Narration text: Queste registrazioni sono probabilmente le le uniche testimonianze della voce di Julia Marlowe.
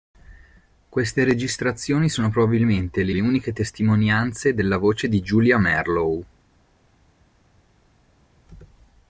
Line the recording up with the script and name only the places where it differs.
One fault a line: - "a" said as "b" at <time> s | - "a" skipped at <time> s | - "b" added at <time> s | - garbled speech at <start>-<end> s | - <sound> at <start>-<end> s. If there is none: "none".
none